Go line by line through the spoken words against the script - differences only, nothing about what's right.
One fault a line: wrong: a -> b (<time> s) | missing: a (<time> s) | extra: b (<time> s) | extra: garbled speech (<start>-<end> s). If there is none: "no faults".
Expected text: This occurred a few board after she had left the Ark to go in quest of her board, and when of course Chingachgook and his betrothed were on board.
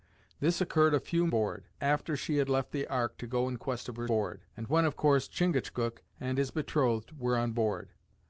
no faults